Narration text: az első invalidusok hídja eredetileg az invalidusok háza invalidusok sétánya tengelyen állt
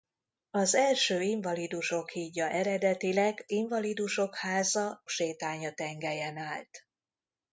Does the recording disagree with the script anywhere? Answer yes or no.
yes